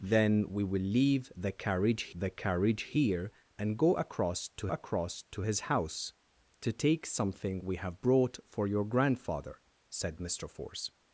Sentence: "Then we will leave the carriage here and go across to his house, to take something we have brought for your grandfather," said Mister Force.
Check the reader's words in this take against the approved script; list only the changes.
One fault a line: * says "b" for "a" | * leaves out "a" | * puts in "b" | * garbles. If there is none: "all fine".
* puts in "the carriage"
* puts in "across to"